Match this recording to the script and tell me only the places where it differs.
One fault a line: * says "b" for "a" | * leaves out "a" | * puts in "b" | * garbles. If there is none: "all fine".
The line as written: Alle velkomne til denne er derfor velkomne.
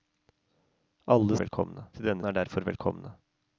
all fine